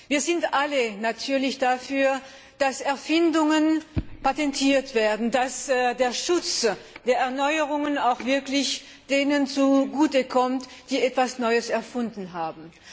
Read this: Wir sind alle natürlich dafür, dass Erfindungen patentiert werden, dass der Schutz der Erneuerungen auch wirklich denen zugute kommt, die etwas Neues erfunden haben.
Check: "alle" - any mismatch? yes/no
no